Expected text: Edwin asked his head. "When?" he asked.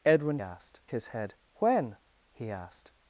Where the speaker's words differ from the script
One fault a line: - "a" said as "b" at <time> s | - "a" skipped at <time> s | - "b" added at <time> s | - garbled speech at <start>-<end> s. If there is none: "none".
none